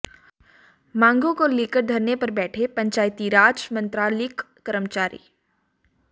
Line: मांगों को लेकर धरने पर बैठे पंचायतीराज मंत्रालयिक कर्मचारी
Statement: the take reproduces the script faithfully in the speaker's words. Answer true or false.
true